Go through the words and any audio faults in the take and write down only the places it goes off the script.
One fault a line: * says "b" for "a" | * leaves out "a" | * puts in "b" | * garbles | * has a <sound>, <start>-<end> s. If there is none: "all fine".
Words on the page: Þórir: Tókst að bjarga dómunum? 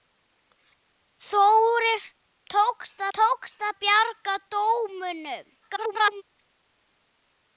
* puts in "Tókst"
* garbles